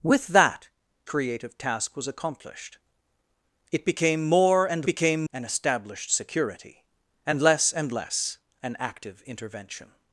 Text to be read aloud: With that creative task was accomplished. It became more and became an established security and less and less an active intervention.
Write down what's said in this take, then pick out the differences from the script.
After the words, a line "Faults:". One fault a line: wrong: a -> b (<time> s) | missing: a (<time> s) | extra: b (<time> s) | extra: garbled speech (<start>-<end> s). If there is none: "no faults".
With that creative task was accomplished. It became more and became an established security and less and less an active intervention.
Faults:
no faults